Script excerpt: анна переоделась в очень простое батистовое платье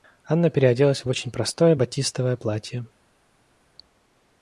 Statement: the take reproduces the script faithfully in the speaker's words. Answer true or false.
true